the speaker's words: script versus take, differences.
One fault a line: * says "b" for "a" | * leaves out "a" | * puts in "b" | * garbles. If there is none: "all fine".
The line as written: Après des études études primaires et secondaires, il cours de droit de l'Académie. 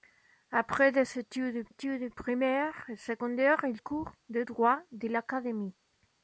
all fine